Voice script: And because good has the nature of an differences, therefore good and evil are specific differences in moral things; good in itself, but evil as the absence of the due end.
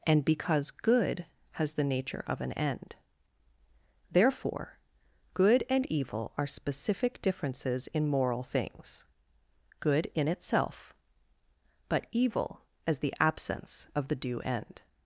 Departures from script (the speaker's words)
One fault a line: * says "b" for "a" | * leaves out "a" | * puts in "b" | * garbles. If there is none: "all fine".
* says "end" for "differences"